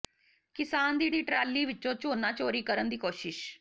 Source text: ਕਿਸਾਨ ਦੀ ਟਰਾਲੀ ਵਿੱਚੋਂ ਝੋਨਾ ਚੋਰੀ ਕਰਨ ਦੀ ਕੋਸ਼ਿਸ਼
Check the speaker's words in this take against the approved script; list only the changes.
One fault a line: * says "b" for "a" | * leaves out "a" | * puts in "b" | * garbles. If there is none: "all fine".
* puts in "ਦੀ"